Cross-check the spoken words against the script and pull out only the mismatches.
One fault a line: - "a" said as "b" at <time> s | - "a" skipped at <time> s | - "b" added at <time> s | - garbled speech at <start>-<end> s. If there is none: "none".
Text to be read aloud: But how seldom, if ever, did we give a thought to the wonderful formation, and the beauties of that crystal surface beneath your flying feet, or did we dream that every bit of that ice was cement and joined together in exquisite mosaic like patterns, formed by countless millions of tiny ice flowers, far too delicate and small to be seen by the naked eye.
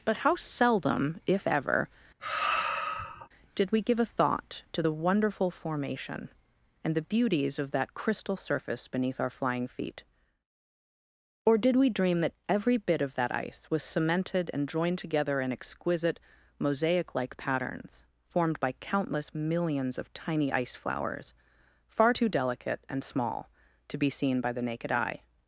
- "your" said as "our" at 9.2 s
- "cement" said as "cemented" at 13.8 s